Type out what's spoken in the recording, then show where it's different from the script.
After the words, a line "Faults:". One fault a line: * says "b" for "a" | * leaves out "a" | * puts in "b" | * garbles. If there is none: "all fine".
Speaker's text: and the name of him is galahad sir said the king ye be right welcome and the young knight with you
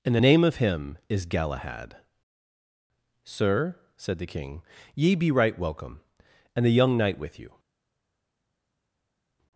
and the name of him is galahad sir said the king ye be right welcome and the young knight with you
Faults:
all fine